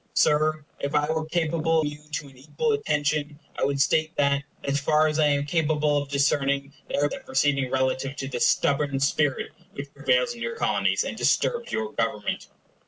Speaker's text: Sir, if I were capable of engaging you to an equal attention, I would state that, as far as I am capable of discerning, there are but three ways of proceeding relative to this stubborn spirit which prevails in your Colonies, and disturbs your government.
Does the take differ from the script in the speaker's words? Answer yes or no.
yes